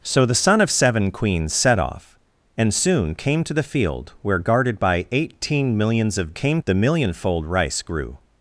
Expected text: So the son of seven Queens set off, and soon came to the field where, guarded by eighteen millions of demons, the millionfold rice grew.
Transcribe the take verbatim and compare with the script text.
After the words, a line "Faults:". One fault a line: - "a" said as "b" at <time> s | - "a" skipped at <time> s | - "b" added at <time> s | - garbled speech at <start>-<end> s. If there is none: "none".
So the son of seven Queens set off, and soon came to the field where, guarded by eighteen millions of came, the millionfold rice grew.
Faults:
- "demons" said as "came" at 6.3 s